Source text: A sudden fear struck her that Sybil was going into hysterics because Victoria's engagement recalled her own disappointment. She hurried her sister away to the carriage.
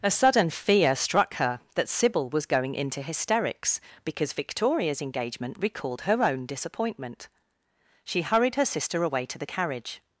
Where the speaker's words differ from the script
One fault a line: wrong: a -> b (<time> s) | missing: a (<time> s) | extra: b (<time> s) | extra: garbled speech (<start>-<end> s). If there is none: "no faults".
no faults